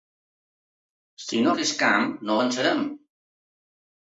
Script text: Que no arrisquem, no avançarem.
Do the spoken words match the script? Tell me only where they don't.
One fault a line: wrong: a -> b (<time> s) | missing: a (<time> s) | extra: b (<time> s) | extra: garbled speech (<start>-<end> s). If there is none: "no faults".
wrong: Que -> Si (1.2 s)